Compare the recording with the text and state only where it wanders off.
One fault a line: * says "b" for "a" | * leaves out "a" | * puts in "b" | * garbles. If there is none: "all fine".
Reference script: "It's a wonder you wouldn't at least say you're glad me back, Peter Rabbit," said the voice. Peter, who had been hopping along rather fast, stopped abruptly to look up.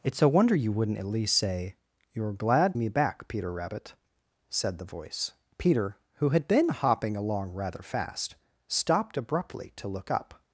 all fine